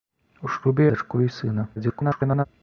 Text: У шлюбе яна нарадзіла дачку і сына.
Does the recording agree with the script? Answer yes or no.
no